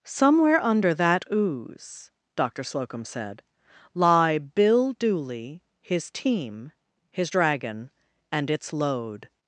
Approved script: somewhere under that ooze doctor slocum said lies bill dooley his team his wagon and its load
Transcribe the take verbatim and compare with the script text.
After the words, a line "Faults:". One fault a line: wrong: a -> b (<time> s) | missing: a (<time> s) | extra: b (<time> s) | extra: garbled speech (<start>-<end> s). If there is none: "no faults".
somewhere under that ooze doctor slocum said lie bill dooley his team his dragon and its load
Faults:
wrong: lies -> lie (3.9 s)
wrong: wagon -> dragon (7.3 s)